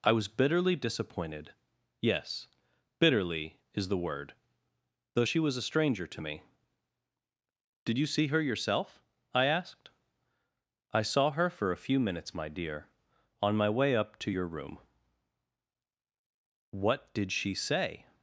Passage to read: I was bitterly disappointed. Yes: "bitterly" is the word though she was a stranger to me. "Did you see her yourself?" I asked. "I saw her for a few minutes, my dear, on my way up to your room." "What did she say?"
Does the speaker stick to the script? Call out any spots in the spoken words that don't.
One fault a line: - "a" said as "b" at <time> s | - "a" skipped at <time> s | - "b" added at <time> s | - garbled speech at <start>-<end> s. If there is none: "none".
none